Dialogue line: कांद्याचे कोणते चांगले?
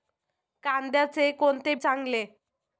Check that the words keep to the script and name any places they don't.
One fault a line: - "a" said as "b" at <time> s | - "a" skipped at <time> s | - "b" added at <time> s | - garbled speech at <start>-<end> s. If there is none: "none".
none